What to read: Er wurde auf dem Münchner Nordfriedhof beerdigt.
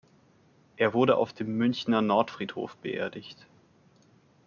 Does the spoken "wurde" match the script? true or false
true